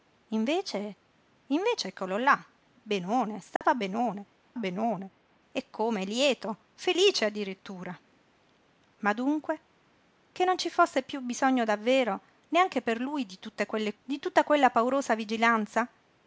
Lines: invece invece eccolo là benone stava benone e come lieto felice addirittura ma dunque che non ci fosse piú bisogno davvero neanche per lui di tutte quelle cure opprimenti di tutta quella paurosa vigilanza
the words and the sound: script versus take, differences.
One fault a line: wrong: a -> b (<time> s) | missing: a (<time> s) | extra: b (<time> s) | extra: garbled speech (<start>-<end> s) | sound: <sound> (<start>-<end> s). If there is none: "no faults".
sound: dropout (3.6-3.6 s)
extra: benone (4.6 s)
missing: cure opprimenti (13.9 s)